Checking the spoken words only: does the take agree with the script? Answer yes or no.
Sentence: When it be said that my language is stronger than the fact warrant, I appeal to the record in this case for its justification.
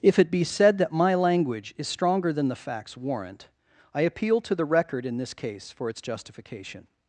no